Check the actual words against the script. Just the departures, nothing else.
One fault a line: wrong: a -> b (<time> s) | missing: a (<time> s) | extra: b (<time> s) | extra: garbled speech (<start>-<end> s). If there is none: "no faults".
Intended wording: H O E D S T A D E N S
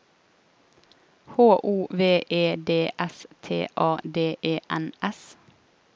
extra: V (1.9 s)